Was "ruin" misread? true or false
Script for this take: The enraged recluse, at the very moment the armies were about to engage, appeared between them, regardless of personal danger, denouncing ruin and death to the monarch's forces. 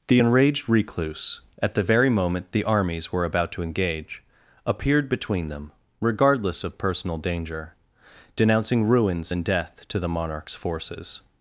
true